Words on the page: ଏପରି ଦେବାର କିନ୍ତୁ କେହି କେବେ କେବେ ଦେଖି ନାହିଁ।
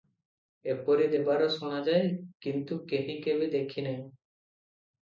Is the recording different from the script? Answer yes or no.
yes